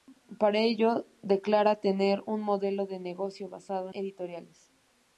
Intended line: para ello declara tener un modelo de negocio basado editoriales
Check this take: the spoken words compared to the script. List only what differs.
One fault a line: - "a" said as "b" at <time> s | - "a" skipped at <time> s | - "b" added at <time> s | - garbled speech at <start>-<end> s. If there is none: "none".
none